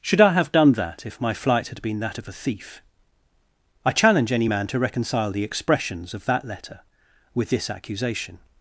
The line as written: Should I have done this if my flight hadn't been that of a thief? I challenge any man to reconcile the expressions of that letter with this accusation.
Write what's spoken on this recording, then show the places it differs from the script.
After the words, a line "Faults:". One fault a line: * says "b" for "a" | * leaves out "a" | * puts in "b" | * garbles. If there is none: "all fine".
Should I have done that if my flight had been that of a thief? I challenge any man to reconcile the expressions of that letter with this accusation.
Faults:
* says "that" for "this"
* says "had" for "hadn't"